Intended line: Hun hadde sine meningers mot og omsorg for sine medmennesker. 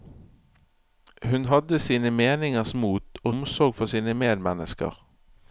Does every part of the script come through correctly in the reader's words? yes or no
yes